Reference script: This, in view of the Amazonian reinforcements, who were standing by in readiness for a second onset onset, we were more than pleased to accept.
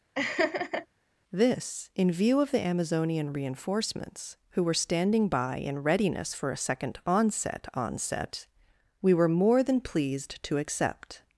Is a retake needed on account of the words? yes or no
no